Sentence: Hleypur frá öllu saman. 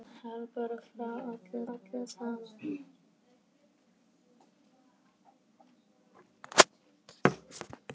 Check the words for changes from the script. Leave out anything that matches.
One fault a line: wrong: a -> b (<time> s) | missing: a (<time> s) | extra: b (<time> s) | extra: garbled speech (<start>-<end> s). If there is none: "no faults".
extra: öllu (1.7 s)